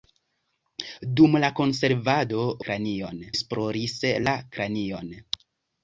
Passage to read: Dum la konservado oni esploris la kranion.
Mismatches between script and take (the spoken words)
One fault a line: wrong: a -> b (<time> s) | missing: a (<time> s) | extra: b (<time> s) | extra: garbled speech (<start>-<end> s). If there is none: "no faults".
wrong: oni -> kranion (2.7 s)